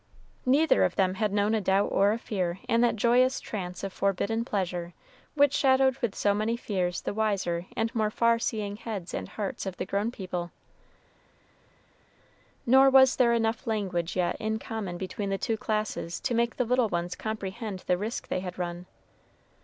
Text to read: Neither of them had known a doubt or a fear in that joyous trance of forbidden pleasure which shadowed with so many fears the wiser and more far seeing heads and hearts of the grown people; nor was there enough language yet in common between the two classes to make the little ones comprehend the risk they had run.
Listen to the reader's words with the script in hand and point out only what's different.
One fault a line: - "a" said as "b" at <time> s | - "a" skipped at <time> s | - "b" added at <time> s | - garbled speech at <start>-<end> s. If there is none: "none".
none